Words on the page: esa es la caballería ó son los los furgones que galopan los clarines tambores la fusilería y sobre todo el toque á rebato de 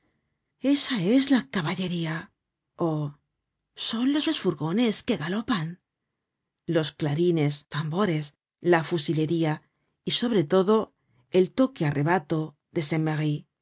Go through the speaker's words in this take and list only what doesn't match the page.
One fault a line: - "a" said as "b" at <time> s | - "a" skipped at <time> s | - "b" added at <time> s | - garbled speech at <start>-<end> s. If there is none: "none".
none